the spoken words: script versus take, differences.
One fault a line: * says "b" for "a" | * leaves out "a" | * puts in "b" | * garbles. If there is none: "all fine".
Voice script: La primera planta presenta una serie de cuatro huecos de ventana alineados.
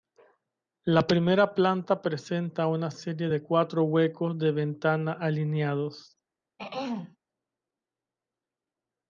all fine